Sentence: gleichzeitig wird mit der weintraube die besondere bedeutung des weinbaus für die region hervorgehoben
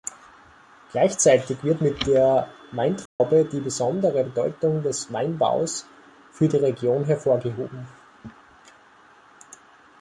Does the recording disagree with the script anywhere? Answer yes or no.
no